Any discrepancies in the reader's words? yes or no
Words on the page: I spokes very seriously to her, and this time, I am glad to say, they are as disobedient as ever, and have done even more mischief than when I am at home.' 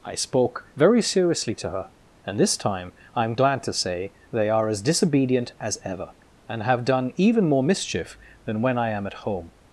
yes